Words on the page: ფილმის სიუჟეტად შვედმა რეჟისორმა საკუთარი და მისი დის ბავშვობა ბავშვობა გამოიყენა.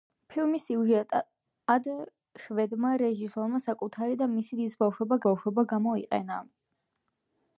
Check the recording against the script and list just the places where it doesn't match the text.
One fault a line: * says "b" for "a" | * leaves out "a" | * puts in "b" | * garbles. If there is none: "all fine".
all fine